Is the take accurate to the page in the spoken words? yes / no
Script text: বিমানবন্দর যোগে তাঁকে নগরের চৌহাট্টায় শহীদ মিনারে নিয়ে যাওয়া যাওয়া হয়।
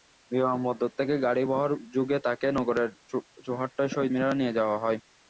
no